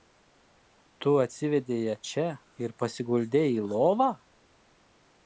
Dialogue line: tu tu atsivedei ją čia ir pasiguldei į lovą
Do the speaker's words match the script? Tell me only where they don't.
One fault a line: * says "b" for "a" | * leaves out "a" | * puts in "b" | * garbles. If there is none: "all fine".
* leaves out "tu"